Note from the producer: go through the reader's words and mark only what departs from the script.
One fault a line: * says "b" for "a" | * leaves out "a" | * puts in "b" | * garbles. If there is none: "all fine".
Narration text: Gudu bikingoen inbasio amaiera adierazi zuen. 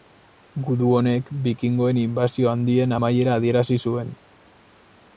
* puts in "honek"
* puts in "handien"